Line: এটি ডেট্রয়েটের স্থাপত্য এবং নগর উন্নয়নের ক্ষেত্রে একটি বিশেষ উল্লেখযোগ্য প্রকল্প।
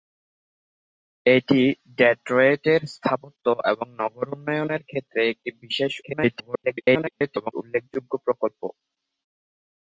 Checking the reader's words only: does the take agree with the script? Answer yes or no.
no